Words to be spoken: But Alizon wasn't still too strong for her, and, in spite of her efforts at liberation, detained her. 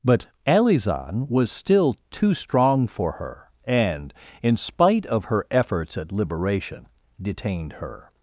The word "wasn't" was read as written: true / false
false